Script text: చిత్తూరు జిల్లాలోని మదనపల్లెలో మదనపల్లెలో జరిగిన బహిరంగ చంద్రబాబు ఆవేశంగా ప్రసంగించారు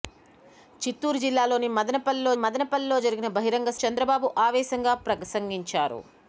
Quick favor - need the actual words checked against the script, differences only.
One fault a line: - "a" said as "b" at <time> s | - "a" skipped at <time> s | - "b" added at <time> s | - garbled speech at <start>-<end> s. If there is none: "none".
none